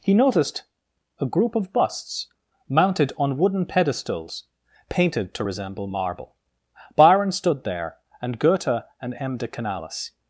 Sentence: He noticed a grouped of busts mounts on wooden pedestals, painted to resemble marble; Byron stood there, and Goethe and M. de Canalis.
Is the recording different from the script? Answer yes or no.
yes